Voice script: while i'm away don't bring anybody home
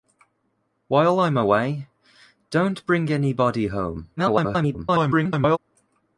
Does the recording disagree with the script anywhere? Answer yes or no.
yes